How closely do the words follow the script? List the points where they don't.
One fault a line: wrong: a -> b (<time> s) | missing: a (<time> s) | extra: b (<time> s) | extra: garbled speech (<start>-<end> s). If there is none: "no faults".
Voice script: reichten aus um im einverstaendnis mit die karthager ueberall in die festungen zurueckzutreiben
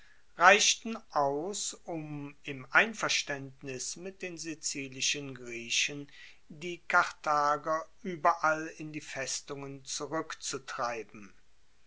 extra: den sizilischen griechen (4.2 s)